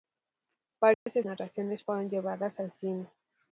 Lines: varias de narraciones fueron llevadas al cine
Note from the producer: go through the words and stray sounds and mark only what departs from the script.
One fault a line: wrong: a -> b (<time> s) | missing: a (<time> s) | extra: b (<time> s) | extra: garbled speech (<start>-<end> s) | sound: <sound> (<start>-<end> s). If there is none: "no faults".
sound: dropout (0.9-1.1 s)